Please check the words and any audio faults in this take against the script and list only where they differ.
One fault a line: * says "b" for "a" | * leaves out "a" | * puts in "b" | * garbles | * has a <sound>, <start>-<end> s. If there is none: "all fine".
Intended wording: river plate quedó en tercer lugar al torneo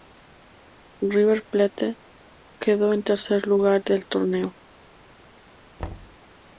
* says "del" for "al"
* has a thud, 5.8-6.2 s